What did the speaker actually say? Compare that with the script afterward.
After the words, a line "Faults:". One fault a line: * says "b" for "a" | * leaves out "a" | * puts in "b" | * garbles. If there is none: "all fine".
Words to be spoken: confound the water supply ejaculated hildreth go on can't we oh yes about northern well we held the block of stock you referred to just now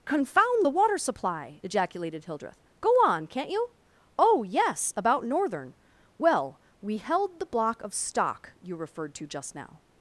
confound the water supply ejaculated hildreth go on can't you oh yes about northern well we held the block of stock you referred to just now
Faults:
* says "you" for "we"